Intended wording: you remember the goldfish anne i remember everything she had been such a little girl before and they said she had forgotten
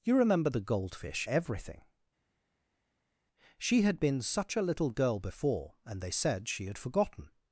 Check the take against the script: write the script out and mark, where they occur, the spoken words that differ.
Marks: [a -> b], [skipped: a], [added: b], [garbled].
you remember the goldfish [skipped: anne i remember] everything she had been such a little girl before and they said she had forgotten